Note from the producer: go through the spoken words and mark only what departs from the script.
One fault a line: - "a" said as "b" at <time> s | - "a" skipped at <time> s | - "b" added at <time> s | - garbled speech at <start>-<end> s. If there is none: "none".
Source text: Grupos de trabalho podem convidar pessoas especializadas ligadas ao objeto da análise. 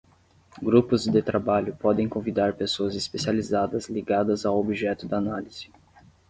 none